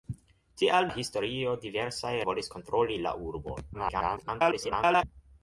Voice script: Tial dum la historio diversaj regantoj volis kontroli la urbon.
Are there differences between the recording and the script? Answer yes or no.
yes